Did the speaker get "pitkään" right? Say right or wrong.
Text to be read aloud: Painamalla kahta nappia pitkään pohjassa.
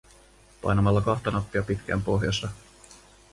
right